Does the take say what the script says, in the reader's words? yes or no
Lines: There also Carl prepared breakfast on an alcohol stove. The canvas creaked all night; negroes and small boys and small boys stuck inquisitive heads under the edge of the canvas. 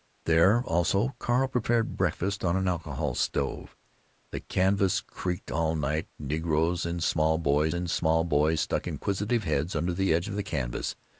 yes